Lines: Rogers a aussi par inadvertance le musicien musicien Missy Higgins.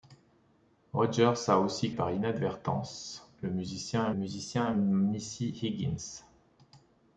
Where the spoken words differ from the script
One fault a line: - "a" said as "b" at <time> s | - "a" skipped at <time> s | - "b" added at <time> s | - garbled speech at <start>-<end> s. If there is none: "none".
none